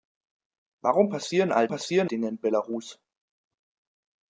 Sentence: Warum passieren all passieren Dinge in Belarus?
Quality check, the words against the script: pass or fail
pass